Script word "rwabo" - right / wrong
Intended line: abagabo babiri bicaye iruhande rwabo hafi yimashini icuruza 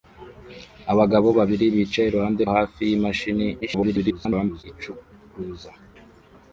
wrong